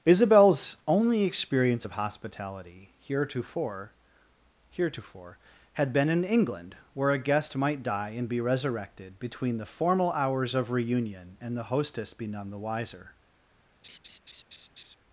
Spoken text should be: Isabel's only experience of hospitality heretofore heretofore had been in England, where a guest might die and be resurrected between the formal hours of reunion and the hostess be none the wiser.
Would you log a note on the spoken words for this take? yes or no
no